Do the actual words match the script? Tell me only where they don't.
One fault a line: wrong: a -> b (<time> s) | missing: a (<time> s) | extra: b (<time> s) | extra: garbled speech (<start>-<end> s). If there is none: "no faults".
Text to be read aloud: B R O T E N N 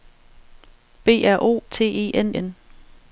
no faults